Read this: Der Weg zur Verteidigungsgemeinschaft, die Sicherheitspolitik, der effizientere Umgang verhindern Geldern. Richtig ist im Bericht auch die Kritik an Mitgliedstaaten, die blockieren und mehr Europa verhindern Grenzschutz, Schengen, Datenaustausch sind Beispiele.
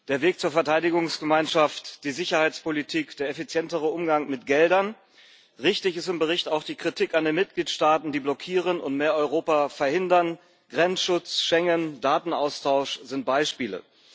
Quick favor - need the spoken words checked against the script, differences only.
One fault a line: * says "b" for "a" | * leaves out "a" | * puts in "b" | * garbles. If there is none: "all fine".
* says "mit" for "verhindern"
* puts in "den"